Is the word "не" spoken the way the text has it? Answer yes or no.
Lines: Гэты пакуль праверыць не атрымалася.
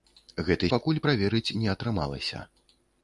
yes